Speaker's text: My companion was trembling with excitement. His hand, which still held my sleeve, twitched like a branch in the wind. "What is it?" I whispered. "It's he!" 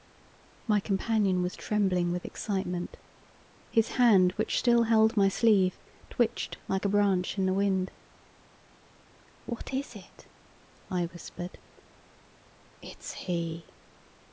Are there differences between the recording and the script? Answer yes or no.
no